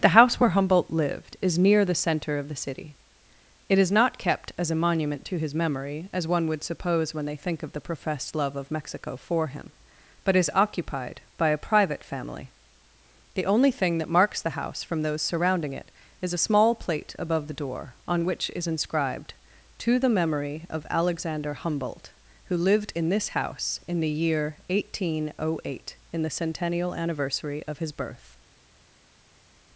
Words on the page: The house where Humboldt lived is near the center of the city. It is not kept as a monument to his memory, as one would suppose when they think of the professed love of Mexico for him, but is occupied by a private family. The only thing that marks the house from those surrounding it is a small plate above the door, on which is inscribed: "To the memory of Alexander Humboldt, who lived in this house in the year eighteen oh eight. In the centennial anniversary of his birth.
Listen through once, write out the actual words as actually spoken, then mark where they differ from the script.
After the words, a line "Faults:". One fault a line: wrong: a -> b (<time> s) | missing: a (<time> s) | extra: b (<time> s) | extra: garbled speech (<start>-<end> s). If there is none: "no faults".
The house where Humboldt lived is near the center of the city. It is not kept as a monument to his memory, as one would suppose when they think of the professed love of Mexico for him, but is occupied by a private family. The only thing that marks the house from those surrounding it is a small plate above the door, on which is inscribed: "To the memory of Alexander Humboldt, who lived in this house in the year eighteen oh eight. In the centennial anniversary of his birth.
Faults:
no faults